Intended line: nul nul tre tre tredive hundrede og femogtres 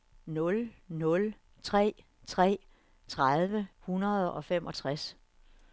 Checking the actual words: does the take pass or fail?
pass